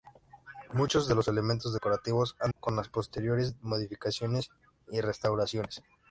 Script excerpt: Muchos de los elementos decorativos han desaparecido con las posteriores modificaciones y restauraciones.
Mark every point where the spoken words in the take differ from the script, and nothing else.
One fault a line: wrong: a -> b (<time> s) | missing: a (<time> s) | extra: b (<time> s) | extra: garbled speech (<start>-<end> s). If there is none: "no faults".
missing: desaparecido (2.5 s)